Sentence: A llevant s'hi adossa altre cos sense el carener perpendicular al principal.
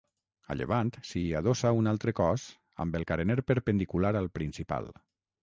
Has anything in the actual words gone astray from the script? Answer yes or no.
yes